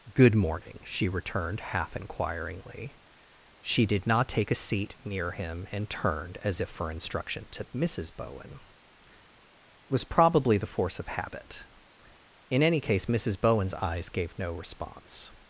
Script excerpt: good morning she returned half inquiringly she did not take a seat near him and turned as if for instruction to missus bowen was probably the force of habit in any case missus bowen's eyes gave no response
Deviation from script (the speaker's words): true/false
false